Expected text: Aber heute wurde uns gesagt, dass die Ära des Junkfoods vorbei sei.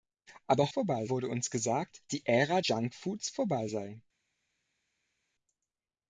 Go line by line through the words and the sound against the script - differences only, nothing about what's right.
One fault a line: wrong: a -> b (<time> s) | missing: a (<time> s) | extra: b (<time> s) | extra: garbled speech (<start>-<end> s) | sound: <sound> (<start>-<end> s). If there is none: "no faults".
wrong: heute -> vorbei (0.7 s)
missing: dass (2.0 s)
missing: des (2.6 s)